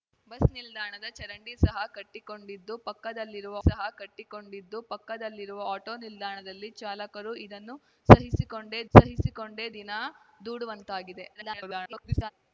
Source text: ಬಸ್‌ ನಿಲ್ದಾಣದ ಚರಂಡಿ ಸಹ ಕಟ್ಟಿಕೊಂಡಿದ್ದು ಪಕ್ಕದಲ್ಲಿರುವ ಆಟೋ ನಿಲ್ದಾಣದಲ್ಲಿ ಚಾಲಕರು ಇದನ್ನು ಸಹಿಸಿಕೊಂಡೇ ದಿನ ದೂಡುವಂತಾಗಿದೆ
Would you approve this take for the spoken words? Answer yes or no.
no